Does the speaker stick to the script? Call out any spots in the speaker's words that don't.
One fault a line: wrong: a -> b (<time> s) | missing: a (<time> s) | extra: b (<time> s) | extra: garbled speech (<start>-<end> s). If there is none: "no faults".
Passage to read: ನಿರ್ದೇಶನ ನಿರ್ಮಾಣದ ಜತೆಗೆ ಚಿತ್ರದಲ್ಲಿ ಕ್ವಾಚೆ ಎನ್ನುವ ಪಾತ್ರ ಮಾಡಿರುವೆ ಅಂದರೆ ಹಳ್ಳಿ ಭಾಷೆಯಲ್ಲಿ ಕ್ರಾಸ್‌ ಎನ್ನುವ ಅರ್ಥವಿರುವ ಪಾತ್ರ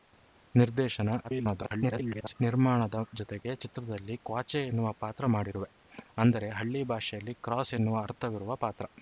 extra: garbled speech (1.2-2.3 s)